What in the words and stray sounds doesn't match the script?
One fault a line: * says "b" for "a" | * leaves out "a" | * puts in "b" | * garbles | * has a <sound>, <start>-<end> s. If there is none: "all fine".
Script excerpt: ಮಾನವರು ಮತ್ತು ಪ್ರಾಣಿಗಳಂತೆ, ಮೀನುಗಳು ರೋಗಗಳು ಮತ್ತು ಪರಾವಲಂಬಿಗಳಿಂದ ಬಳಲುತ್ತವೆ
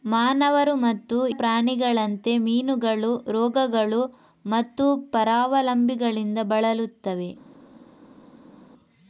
all fine